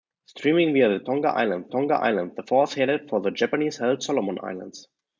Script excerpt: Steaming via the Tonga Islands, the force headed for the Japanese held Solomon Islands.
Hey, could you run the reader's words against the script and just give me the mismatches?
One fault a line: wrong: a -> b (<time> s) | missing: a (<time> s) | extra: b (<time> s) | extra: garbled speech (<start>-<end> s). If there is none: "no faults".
extra: Tonga Islands (1.7 s)